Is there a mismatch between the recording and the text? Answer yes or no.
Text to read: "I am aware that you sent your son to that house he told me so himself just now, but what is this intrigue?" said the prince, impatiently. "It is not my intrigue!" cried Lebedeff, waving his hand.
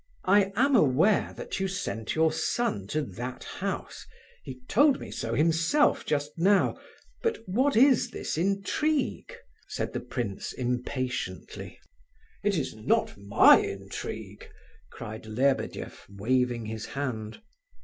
no